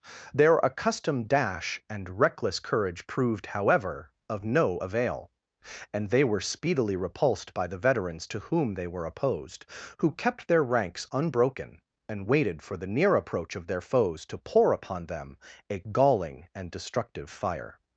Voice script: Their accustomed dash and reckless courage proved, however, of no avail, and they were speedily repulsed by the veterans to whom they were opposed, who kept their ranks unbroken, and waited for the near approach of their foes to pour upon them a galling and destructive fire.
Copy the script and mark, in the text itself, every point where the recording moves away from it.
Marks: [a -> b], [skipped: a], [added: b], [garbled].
Their accustomed dash and reckless courage proved, however, of no avail, and they were speedily repulsed by the veterans to whom they were opposed, who kept their ranks unbroken, and waited for the near approach of their foes to pour upon them a galling and destructive fire.